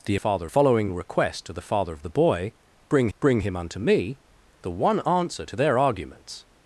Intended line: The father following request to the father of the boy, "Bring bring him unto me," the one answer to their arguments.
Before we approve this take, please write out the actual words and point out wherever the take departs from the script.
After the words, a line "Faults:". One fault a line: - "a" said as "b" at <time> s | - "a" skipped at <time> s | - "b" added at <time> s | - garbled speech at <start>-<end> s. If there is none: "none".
The father following request to the father of the boy, "Bring bring him unto me," the one answer to their arguments.
Faults:
none